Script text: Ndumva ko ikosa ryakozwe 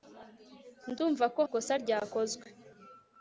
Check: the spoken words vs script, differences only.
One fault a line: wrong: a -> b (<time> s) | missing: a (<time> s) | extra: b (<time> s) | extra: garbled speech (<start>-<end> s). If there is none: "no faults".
no faults